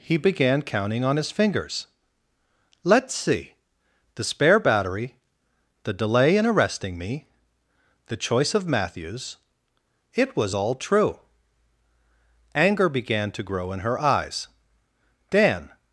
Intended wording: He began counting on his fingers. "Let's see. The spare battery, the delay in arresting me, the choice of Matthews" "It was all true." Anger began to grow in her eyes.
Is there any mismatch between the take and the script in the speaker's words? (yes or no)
yes